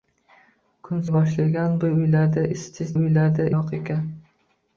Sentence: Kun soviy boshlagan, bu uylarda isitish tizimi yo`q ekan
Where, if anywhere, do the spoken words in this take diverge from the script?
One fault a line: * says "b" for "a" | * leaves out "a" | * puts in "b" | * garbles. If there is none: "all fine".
* leaves out "soviy"
* says "uylarda" for "tizimi"